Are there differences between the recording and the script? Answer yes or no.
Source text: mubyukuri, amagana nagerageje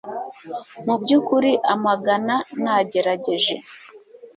no